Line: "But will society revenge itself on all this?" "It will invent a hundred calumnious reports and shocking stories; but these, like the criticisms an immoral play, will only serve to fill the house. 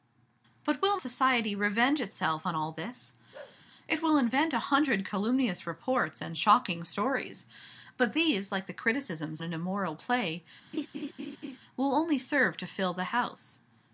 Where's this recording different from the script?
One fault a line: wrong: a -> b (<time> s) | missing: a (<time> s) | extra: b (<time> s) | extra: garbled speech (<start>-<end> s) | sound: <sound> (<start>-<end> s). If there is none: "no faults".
sound: bark (3.3-3.6 s)
sound: laugh (10.7-11.6 s)